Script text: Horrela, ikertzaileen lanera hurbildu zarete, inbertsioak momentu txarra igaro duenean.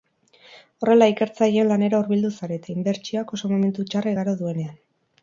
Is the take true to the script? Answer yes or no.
no